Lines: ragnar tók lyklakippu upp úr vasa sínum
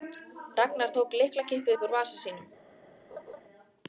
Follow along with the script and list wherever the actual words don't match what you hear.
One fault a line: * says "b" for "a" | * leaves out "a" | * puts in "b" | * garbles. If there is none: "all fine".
all fine